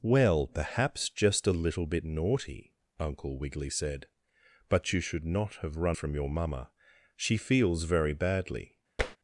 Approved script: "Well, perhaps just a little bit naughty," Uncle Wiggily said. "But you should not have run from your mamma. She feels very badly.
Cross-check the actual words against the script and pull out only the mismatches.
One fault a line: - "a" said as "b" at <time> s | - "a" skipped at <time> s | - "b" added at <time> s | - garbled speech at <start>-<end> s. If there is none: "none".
none